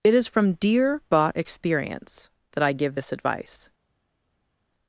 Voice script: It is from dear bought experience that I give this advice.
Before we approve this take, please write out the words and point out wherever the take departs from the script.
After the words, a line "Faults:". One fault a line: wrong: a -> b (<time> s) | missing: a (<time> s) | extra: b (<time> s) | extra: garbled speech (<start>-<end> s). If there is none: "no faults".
It is from dear bought experience that I give this advice.
Faults:
no faults